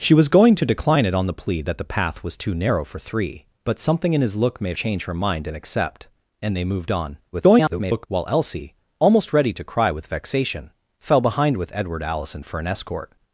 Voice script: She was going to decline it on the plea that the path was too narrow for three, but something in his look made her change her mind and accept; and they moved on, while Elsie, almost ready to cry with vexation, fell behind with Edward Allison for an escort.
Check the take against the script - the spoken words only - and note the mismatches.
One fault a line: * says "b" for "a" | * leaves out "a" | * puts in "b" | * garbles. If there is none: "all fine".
* leaves out "her"
* garbles